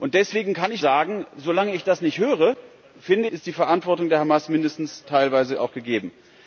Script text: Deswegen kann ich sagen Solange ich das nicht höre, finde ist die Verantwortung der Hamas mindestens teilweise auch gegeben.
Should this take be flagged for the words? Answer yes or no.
no